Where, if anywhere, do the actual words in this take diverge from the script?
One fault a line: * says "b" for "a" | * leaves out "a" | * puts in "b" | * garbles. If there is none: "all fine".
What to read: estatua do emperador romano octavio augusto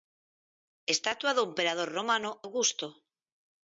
* leaves out "octavio"